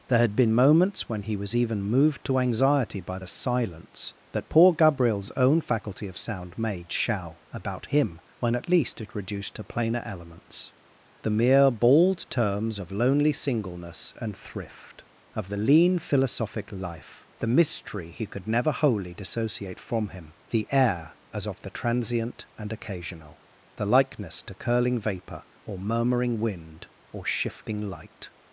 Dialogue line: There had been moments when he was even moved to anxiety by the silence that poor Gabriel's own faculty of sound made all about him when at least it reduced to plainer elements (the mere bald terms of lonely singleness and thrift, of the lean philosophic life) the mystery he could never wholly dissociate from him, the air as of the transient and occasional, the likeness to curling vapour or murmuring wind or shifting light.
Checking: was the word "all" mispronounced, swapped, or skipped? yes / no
yes